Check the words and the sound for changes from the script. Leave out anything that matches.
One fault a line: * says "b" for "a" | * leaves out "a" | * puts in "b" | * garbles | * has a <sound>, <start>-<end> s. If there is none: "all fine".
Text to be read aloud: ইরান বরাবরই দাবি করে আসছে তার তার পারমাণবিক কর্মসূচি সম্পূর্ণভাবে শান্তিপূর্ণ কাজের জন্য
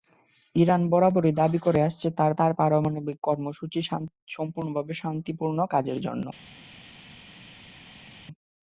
all fine